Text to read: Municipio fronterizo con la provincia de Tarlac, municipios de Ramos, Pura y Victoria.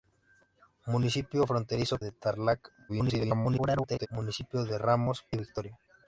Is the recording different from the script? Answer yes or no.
yes